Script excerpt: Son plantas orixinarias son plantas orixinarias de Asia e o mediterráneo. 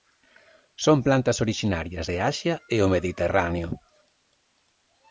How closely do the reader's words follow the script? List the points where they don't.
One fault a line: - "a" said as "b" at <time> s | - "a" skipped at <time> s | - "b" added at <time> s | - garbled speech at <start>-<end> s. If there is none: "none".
- "son plantas orixinarias" skipped at 2.1 s